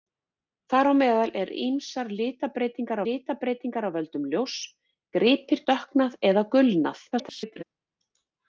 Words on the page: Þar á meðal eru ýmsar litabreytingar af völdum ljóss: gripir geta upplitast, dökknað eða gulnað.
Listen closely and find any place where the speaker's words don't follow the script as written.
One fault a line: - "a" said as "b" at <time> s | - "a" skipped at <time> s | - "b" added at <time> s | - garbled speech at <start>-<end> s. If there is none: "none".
- "litabreytingar" added at 3.1 s
- "geta upplitast" skipped at 5.6 s
- garbled speech at 7.1-7.6 s